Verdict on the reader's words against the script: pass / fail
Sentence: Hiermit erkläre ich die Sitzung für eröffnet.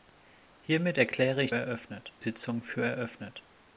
fail